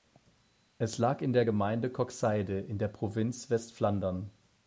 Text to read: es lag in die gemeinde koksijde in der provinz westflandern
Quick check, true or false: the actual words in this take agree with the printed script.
false